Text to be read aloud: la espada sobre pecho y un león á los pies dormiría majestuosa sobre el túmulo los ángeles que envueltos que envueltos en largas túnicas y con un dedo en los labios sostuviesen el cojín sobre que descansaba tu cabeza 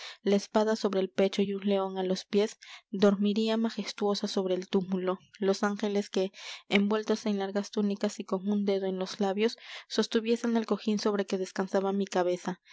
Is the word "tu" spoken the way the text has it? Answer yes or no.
no